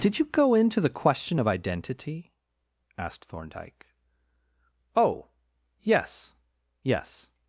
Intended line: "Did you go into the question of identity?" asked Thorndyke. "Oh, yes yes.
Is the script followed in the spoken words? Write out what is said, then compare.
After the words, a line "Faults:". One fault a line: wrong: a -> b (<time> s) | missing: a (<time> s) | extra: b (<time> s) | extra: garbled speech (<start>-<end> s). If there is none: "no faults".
"Did you go into the question of identity?" asked Thorndyke. "Oh, yes yes.
Faults:
no faults